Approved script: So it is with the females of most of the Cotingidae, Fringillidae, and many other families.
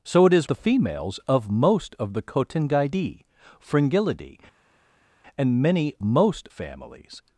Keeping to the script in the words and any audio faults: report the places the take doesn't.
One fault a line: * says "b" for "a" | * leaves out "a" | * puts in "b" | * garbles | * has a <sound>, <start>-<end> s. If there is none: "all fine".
* leaves out "with"
* says "most" for "other"